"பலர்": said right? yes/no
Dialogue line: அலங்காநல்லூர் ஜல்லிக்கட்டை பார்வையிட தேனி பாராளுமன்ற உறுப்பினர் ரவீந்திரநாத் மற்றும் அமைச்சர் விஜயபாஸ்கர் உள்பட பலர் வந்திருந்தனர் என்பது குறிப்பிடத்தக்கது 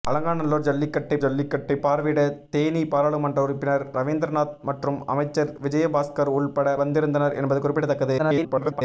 no